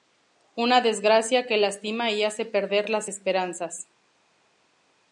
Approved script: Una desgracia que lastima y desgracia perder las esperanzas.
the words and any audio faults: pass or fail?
fail